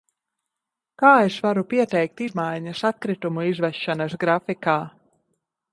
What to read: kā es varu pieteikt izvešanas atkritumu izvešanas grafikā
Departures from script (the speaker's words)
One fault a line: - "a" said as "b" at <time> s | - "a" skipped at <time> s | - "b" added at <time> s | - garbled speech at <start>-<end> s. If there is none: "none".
- "izvešanas" said as "izmaiņas" at 2.2 s